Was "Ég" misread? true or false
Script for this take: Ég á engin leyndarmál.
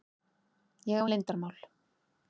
false